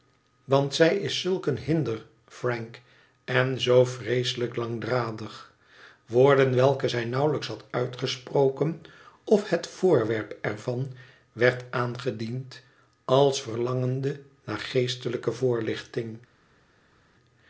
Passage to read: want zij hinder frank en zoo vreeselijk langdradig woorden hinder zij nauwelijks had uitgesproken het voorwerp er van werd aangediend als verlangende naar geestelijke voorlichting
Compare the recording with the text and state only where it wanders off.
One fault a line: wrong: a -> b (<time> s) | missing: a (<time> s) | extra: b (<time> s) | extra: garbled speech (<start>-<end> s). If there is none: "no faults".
extra: is zulk een (1.0 s)
wrong: hinder -> welke (6.5 s)
extra: of (9.2 s)